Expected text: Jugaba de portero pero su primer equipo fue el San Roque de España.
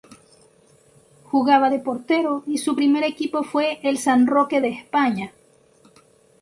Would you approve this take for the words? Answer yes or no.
no